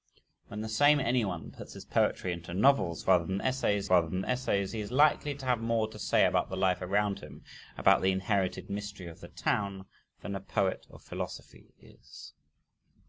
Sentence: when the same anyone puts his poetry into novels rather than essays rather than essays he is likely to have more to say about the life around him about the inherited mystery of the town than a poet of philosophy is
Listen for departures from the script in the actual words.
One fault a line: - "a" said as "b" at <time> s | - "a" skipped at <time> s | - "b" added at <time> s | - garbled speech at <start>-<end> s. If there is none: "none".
none